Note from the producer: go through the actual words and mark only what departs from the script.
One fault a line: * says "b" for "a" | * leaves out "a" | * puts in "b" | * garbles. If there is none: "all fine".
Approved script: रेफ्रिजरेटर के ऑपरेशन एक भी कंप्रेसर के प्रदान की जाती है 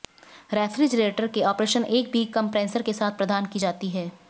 * puts in "साथ"